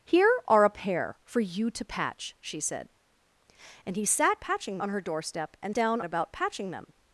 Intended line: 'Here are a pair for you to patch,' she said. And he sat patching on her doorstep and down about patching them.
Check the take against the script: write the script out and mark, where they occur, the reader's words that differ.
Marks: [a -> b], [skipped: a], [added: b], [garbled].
'Here are a pair for you to patch,' she said. And he sat patching on her doorstep and down about patching them.